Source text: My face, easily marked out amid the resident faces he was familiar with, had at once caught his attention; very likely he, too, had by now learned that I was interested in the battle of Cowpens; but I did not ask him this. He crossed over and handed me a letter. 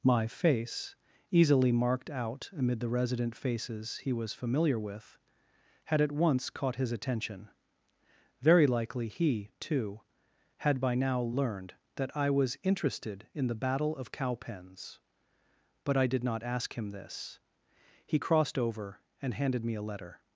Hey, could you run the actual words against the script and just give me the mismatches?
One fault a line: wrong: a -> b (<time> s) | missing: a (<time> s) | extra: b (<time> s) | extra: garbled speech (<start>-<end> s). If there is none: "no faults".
no faults